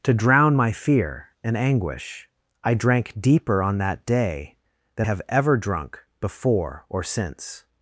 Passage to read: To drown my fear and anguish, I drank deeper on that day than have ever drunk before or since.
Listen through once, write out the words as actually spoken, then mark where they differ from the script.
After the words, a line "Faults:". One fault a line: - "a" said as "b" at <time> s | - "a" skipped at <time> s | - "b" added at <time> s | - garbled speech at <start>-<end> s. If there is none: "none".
To drown my fear and anguish, I drank deeper on that day than have ever drunk before or since.
Faults:
none